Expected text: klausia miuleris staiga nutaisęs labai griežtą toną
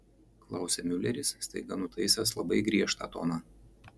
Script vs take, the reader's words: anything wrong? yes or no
no